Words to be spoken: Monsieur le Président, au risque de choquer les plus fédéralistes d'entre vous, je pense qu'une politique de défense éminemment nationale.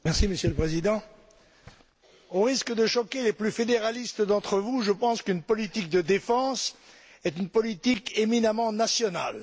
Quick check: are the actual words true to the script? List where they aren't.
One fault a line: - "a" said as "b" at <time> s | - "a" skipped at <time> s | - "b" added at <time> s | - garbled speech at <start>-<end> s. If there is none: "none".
- "est une politique" added at 7.3 s